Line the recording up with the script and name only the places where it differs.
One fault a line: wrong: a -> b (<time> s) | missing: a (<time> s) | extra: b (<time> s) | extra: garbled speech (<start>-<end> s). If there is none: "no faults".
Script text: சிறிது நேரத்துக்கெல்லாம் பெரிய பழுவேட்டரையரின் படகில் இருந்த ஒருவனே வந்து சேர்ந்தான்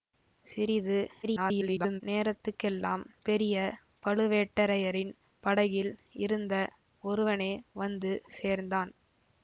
extra: garbled speech (1.2-2.0 s)